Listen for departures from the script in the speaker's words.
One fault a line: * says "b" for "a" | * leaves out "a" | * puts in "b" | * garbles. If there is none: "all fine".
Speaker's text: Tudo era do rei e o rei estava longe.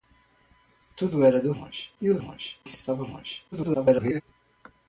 * says "longe" for "rei"
* says "longe" for "rei"
* garbles